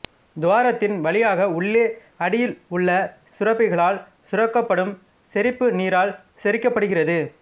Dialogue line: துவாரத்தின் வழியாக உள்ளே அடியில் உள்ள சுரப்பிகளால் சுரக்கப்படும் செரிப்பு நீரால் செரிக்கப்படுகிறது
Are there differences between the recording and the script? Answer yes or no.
no